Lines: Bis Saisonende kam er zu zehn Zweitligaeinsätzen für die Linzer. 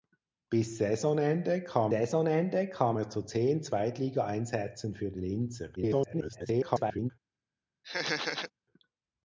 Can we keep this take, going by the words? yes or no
no